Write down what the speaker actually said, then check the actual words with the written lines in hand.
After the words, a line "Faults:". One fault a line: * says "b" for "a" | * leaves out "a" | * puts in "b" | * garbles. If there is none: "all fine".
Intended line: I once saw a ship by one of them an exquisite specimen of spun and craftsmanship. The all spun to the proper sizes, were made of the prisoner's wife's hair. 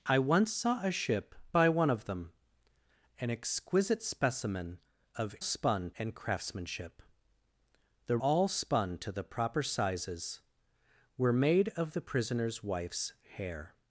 I once saw a ship by one of them an exquisite specimen of spun and craftsmanship. The all spun to the proper sizes, were made of the prisoner's wife's hair.
Faults:
all fine